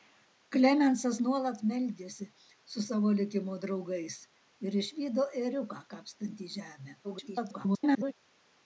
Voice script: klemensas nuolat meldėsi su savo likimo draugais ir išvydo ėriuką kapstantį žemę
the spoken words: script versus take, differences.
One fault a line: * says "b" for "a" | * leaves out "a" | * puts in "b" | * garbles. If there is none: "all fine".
* garbles